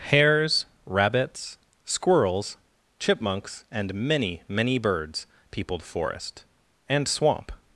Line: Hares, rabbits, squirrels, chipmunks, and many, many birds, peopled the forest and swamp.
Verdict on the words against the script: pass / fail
fail